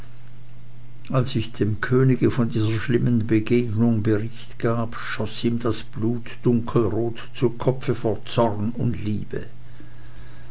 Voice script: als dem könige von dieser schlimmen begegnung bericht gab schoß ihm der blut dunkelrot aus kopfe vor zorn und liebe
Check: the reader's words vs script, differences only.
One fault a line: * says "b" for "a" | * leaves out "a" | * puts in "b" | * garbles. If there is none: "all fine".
* puts in "ich"
* says "das" for "der"
* says "zu" for "aus"